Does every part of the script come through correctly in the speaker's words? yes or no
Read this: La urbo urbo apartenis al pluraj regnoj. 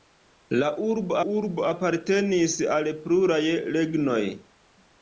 yes